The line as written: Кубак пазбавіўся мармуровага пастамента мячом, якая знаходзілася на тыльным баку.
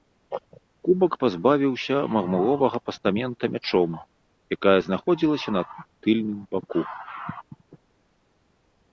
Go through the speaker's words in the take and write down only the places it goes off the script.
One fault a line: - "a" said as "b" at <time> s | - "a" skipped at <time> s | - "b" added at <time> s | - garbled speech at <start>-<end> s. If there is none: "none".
none